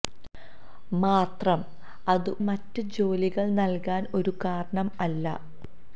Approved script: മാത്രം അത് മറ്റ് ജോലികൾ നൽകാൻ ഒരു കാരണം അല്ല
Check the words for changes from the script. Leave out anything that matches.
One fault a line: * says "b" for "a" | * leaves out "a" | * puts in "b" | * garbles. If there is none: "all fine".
all fine